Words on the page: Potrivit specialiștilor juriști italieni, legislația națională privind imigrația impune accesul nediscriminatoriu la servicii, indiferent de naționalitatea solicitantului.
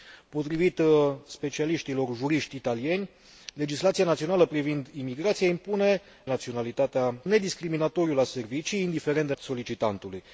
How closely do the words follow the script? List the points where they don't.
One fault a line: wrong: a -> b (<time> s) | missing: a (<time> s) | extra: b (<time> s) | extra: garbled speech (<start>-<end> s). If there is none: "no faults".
wrong: accesul -> naționalitatea (6.3 s)
missing: naționalitatea (9.3 s)